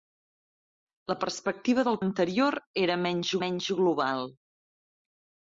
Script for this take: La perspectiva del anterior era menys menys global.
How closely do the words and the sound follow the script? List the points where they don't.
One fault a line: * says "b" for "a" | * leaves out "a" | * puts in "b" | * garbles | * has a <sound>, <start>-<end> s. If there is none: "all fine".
all fine